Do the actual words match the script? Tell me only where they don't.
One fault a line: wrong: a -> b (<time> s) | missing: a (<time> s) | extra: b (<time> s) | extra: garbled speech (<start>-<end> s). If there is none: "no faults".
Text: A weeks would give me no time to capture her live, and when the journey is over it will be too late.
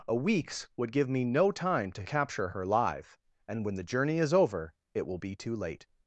no faults